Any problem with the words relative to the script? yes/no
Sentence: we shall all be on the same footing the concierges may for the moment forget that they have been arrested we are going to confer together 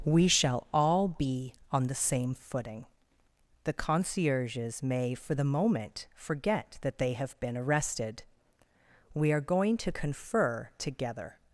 no